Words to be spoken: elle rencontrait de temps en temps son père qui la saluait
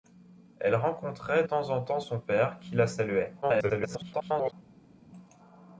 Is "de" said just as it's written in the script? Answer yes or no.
no